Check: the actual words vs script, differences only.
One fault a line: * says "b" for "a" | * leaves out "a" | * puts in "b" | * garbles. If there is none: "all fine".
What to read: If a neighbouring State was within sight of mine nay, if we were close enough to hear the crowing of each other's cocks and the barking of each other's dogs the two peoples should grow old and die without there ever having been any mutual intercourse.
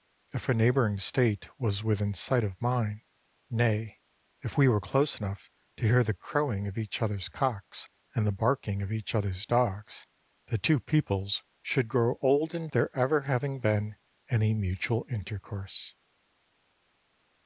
* leaves out "die without"